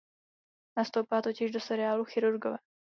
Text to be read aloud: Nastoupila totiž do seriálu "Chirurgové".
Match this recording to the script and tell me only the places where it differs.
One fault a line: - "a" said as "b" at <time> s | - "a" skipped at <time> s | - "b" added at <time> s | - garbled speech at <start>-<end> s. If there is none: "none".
none